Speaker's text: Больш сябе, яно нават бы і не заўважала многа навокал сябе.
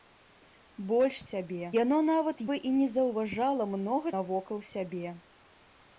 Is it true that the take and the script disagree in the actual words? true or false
false